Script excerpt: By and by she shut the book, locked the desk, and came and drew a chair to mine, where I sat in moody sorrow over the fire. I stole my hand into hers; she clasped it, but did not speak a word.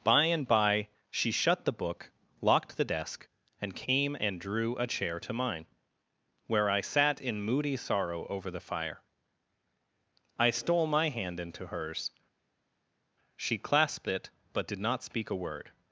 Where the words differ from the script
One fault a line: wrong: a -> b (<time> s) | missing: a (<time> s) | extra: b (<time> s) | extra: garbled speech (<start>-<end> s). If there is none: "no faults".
no faults